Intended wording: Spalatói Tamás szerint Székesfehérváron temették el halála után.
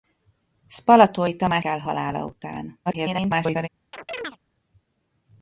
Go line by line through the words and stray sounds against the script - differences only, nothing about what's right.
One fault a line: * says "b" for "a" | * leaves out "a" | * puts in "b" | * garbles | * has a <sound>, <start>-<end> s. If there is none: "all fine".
* leaves out "szerint Székesfehérváron temették"
* garbles
* has a chirp, 3.9-4.4 s